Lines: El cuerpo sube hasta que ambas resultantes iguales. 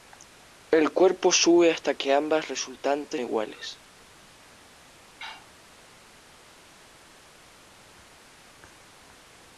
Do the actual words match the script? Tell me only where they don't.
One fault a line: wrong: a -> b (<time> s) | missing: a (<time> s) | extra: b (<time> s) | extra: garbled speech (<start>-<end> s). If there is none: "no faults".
no faults